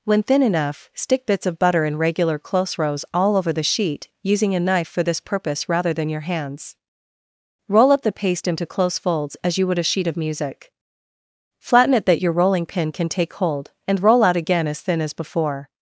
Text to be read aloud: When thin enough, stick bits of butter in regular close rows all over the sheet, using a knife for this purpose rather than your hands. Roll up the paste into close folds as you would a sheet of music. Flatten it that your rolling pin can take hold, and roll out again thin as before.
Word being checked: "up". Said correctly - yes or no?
yes